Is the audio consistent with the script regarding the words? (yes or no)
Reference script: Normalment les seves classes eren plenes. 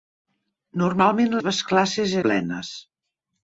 no